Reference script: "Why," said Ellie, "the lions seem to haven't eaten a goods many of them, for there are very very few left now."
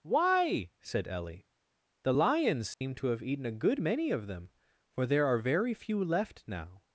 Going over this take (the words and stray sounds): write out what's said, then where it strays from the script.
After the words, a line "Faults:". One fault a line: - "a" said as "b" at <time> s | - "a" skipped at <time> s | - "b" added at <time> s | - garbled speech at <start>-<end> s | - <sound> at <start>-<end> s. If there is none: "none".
"Why," said Ellie, "the lions seem to have eaten a good many of them, for there are very few left now."
Faults:
- dropout at 2.7-2.8 s
- "haven't" said as "have" at 3.1 s
- "goods" said as "good" at 3.5 s
- "very" skipped at 5.7 s